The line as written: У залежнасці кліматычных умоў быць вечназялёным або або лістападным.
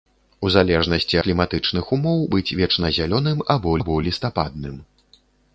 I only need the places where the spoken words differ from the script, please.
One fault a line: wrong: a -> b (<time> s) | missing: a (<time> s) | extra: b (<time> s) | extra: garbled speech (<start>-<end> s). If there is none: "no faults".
no faults